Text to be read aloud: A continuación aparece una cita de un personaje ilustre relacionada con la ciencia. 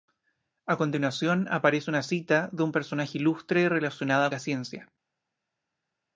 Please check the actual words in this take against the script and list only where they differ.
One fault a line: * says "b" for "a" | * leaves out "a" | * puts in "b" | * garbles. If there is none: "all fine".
* leaves out "con"